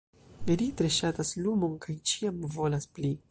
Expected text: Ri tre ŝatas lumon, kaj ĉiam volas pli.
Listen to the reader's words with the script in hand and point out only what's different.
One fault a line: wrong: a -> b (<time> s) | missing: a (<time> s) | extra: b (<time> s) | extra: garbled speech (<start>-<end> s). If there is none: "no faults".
no faults